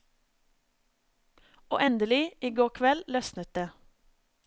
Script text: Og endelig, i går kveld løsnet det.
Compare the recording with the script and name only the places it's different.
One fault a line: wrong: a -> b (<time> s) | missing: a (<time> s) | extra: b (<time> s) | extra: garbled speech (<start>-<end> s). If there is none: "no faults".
no faults